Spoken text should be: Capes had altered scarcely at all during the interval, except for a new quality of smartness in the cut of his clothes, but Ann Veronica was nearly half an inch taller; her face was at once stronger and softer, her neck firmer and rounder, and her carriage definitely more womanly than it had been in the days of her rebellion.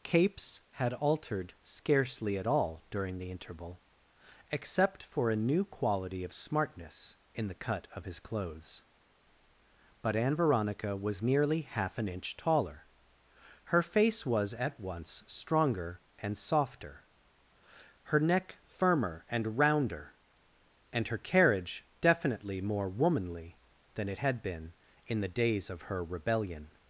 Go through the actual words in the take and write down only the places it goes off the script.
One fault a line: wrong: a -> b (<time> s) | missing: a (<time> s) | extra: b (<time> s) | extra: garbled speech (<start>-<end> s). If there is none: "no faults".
no faults